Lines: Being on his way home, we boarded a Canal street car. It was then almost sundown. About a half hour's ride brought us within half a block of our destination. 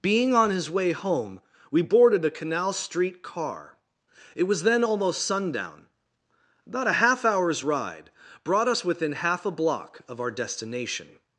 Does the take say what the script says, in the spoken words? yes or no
yes